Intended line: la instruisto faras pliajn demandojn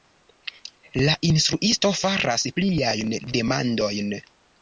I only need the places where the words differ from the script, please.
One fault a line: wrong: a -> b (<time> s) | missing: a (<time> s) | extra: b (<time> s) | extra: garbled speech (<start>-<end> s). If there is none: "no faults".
no faults